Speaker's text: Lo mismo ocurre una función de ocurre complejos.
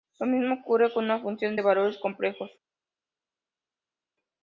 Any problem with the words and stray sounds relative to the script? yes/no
yes